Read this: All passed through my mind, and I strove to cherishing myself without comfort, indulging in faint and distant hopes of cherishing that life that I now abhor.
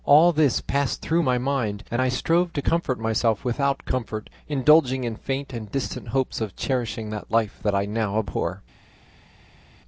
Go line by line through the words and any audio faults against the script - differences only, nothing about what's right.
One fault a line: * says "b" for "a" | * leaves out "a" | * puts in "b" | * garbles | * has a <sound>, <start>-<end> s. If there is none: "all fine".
* puts in "this"
* says "comfort" for "cherishing"